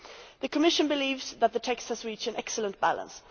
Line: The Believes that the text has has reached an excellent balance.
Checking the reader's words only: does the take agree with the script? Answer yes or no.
no